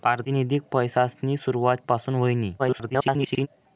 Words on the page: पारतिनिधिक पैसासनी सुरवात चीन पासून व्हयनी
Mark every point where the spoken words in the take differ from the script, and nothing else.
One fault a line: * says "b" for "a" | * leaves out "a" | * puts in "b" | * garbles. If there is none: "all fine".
* leaves out "चीन"
* garbles